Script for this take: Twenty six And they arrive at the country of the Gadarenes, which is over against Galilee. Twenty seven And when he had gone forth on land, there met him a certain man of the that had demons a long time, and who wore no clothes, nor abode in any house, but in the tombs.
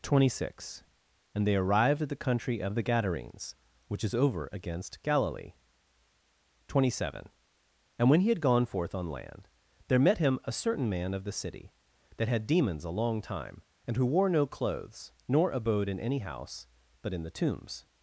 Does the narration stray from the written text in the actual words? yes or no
yes